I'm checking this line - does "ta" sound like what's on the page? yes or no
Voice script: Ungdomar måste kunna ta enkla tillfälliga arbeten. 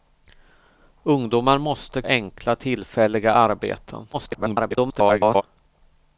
no